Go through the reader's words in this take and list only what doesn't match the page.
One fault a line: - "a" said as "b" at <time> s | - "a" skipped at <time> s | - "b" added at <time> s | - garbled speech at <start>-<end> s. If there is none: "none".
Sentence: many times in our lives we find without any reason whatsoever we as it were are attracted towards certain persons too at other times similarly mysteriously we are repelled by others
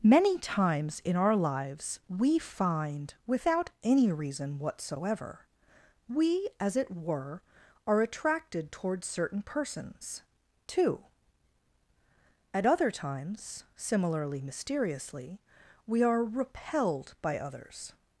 none